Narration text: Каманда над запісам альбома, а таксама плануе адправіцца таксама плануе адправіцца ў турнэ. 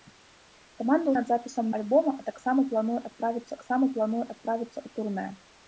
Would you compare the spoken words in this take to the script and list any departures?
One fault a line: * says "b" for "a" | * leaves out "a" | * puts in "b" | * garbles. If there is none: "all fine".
all fine